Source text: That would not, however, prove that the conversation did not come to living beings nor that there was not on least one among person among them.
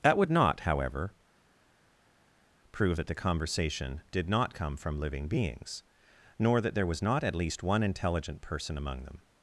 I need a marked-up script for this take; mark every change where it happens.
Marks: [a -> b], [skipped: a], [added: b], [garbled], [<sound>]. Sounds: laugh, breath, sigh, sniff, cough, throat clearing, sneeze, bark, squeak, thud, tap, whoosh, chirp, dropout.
That would not, however, prove that the conversation did not come [to -> from] living beings nor that there was not [on -> at] least one [among -> intelligent] person among them.